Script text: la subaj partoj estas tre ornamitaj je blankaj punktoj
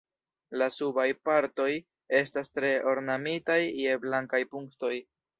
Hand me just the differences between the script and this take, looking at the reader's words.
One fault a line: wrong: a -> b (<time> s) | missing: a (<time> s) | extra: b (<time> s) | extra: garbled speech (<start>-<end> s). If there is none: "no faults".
no faults